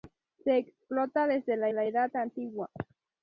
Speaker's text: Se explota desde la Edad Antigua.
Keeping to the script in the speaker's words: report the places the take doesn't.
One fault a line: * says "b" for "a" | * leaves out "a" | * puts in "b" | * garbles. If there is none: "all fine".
* puts in "la"